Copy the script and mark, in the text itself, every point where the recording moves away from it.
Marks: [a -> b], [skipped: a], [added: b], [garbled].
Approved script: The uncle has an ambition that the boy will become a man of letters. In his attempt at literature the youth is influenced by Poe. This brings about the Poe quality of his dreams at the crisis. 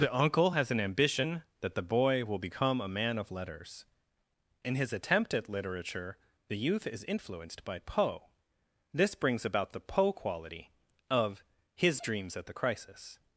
The uncle has an ambition that the boy will become a man of letters. In his attempt at literature the youth is influenced by Poe. This brings about the Poe quality of his dreams at the crisis.